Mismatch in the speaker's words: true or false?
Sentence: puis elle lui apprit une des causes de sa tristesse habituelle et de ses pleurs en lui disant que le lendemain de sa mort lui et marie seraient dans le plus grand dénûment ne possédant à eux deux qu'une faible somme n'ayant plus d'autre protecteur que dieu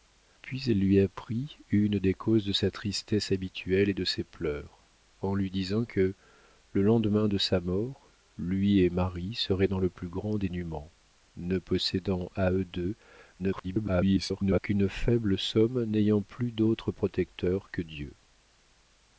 true